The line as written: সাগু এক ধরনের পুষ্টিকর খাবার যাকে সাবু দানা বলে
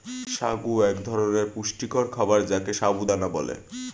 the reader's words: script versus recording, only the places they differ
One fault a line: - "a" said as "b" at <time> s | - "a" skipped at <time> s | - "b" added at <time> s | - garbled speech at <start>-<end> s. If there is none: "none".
none